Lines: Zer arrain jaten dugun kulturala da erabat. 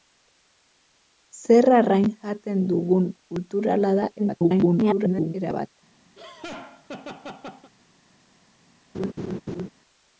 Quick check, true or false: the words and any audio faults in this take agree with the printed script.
false